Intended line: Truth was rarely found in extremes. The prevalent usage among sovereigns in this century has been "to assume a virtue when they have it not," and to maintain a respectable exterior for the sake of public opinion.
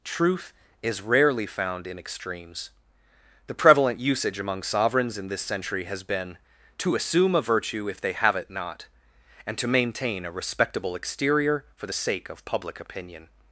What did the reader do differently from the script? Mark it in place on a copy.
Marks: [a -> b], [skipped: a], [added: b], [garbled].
Truth [was -> is] rarely found in extremes. The prevalent usage among sovereigns in this century has been "to assume a virtue [when -> if] they have it not," and to maintain a respectable exterior for the sake of public opinion.